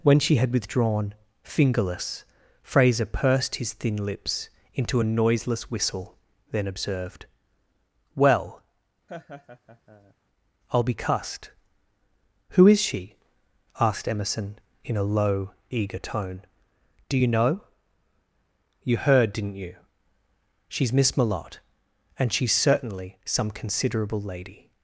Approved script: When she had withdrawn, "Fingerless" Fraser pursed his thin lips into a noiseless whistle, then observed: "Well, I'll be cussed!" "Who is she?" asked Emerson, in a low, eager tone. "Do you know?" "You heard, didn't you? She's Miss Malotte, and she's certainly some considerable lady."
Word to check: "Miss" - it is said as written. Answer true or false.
true